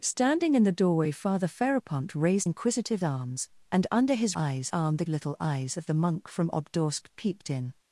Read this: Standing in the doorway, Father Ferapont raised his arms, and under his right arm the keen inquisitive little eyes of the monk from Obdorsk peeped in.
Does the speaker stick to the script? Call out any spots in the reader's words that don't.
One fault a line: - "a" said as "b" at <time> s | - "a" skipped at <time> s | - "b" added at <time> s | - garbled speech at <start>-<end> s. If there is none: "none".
- "his" said as "inquisitive" at 2.4 s
- "right" said as "eyes" at 4.4 s
- "keen inquisitive" skipped at 5.0 s